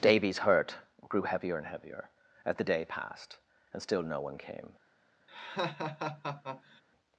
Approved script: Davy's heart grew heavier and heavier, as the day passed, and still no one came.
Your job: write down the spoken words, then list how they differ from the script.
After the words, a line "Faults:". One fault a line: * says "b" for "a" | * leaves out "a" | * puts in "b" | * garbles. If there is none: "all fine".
Davy's hurt grew heavier and heavier, as the day passed, and still no one came.
Faults:
* says "hurt" for "heart"